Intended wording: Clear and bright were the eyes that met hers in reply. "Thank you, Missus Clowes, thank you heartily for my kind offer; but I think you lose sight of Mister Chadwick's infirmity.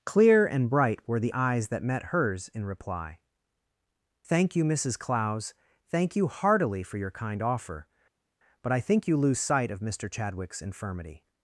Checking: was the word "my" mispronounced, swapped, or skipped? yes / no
yes